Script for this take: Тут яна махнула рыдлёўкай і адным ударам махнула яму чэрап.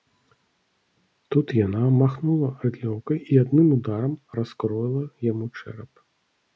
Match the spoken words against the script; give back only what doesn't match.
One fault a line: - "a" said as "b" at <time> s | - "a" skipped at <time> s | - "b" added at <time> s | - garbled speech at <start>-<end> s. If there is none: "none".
- "махнула" said as "раскроіла" at 4.4 s